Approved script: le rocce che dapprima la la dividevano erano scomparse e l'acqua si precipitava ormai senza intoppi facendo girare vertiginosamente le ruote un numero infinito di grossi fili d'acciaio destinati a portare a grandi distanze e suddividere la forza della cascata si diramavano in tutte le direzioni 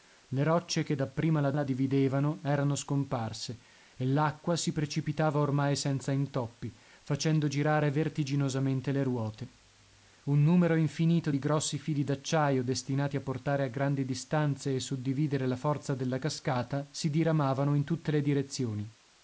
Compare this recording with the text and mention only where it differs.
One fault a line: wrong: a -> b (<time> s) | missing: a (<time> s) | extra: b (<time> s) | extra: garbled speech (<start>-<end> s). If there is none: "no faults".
no faults